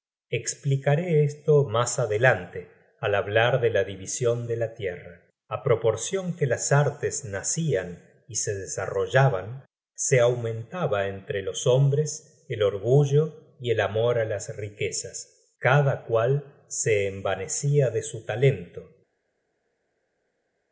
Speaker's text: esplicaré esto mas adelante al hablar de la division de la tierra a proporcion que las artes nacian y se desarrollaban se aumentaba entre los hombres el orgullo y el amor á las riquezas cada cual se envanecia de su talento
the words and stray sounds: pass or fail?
pass